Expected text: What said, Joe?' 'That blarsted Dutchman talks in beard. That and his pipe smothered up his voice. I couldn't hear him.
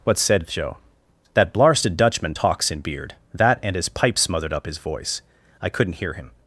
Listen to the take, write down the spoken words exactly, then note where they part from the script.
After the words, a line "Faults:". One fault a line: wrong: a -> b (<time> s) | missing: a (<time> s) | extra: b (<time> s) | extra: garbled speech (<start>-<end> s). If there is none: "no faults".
What said, Joe?' 'That blarsted Dutchman talks in beard. That and his pipe smothered up his voice. I couldn't hear him.
Faults:
no faults